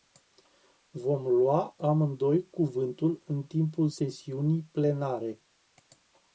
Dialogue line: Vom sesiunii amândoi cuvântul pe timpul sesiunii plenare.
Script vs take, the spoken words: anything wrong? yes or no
yes